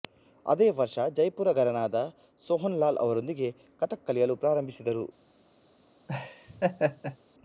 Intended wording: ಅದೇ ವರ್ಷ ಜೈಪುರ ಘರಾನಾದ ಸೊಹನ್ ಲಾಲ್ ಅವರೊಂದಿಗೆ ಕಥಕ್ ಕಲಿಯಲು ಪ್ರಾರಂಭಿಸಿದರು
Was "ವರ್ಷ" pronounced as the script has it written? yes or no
yes